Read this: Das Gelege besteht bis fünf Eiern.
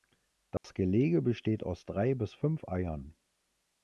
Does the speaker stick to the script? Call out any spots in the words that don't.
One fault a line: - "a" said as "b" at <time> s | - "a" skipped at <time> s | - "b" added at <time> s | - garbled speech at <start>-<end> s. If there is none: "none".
- "aus drei" added at 1.6 s